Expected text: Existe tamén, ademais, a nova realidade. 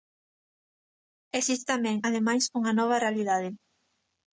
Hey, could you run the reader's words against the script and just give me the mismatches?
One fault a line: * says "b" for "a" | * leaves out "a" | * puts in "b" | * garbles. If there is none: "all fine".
* says "unha" for "a"